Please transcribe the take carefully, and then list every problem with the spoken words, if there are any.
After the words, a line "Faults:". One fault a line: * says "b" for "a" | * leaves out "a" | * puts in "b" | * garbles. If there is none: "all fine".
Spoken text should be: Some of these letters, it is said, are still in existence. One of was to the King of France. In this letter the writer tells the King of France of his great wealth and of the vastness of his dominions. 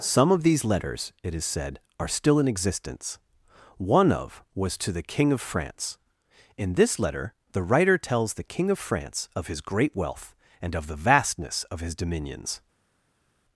Some of these letters, it is said, are still in existence. One of was to the King of France. In this letter the writer tells the King of France of his great wealth and of the vastness of his dominions.
Faults:
all fine